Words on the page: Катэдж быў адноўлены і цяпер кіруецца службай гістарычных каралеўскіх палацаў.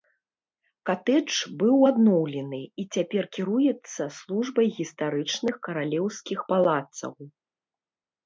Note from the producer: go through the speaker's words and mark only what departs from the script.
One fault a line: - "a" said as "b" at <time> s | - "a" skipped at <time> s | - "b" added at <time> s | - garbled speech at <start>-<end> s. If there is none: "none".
none